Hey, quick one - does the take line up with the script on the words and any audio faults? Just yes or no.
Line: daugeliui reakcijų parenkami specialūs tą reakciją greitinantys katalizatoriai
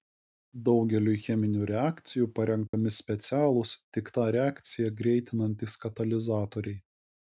no